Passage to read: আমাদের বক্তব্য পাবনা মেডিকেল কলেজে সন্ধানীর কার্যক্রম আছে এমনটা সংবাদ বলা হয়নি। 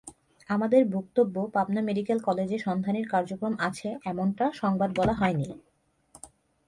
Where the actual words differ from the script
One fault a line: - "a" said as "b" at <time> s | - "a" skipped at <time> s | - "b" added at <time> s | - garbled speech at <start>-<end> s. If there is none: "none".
none